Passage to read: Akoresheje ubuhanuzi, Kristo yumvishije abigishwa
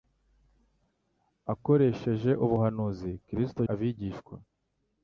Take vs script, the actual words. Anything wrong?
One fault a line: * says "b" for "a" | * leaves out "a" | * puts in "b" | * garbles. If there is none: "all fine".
* leaves out "yumvishije"